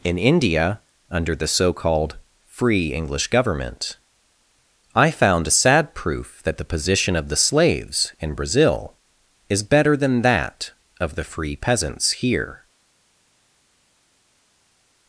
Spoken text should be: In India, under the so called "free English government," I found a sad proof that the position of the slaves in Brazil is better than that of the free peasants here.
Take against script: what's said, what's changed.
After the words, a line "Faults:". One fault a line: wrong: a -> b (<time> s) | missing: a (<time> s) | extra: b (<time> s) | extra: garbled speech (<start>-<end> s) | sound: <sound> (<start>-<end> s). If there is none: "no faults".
In India, under the so called "free English government," I found a sad proof that the position of the slaves in Brazil is better than that of the free peasants here.
Faults:
no faults